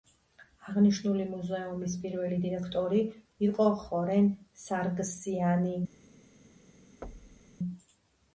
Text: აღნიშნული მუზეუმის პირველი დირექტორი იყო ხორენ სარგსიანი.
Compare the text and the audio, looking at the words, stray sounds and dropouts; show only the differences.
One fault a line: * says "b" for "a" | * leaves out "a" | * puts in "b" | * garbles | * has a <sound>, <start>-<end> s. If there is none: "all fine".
* has a thud, 7.0-7.6 s